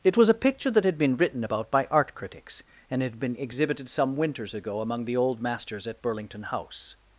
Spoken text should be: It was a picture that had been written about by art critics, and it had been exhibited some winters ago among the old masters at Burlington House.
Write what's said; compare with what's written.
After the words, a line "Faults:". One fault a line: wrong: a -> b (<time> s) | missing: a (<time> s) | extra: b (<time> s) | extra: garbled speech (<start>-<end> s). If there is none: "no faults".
It was a picture that had been written about by art critics, and had been exhibited some winters ago among the old masters at Burlington House.
Faults:
missing: it (3.0 s)